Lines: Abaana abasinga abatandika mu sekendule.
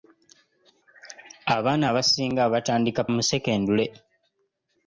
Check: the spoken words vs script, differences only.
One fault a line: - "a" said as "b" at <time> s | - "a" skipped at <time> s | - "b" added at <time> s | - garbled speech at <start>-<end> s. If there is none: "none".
none